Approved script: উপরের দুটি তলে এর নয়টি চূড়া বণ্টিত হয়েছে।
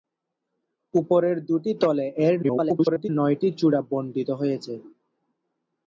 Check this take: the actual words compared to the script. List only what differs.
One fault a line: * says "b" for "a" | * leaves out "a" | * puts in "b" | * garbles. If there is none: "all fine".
* garbles